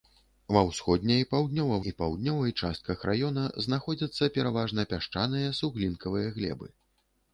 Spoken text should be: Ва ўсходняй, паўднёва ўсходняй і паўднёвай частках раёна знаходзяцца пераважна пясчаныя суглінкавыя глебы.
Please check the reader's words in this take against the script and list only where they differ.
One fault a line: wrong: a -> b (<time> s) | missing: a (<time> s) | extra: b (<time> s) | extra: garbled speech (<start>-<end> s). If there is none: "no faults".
missing: ўсходняй (1.8 s)